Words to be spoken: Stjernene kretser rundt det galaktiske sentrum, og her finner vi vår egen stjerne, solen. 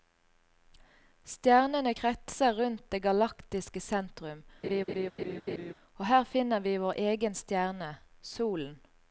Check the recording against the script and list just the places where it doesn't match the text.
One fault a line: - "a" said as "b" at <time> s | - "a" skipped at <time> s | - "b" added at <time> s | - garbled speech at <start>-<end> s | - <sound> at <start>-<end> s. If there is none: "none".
- laugh at 4.6-5.7 s